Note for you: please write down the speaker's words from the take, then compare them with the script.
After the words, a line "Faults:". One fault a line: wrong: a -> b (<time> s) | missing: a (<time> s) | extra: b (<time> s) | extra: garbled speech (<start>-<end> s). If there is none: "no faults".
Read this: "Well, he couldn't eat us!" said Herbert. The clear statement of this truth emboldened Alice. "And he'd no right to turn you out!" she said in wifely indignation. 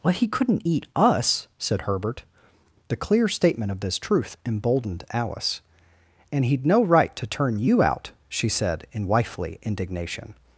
"Well, he couldn't eat us!" said Herbert. The clear statement of this truth emboldened Alice. "And he'd no right to turn you out!" she said in wifely indignation.
Faults:
no faults